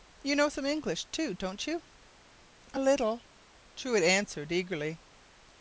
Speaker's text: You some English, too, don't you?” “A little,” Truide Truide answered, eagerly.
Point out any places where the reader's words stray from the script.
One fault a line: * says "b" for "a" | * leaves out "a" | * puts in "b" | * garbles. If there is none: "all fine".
* puts in "know"
* leaves out "Truide"